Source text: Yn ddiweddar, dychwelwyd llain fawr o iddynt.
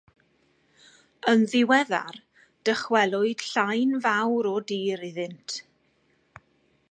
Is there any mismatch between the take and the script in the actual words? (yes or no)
yes